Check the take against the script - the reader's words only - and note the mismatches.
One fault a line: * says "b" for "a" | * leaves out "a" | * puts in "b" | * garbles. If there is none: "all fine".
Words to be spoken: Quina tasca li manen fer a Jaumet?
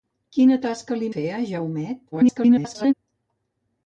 * leaves out "manen"
* garbles